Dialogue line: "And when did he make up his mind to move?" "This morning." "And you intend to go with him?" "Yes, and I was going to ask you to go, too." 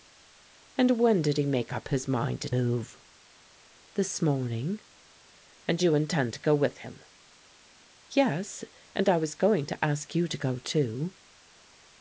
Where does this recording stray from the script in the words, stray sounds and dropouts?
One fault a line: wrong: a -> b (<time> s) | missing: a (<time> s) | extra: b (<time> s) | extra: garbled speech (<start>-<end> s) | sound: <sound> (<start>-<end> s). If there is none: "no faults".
no faults